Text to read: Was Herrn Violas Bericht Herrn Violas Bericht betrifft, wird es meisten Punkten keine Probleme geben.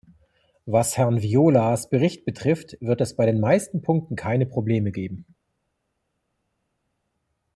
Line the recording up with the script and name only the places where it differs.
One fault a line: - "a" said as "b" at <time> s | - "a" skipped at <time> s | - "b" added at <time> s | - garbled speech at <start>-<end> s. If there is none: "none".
- "Herrn Violas Bericht" skipped at 2.2 s
- "bei den" added at 3.1 s